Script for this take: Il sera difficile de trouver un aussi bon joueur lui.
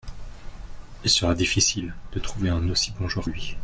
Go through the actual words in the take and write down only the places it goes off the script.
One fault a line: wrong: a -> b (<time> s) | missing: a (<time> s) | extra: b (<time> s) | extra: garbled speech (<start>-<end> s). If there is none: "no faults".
no faults